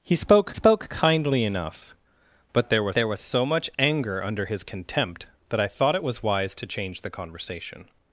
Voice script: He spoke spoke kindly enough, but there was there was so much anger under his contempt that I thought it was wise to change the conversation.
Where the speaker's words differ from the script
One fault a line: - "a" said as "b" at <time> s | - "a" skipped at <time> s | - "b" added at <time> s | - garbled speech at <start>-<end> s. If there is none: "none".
none